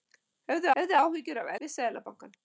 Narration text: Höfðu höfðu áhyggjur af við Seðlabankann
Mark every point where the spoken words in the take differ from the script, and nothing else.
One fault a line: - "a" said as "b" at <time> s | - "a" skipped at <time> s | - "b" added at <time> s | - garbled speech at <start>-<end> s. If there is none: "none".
none